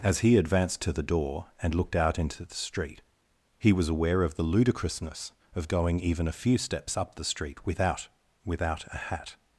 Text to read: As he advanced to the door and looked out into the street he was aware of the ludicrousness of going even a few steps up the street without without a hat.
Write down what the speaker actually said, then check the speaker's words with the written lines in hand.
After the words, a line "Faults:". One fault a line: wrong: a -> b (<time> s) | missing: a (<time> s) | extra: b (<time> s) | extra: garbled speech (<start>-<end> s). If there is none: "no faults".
As he advanced to the door and looked out into the street he was aware of the ludicrousness of going even a few steps up the street without without a hat.
Faults:
no faults